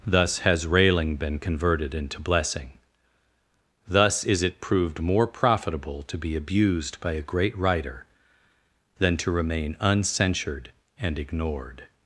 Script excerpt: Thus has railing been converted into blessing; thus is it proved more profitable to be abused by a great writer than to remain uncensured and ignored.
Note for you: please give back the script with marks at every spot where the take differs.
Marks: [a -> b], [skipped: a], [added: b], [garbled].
Thus has railing been converted into blessing; thus is it proved more profitable to be abused by a great writer than to remain uncensured and ignored.